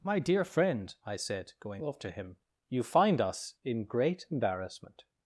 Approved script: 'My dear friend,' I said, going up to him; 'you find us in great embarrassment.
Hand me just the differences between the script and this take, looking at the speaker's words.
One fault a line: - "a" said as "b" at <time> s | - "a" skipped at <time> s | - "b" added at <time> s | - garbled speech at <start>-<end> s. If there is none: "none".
- "up" said as "off" at 1.8 s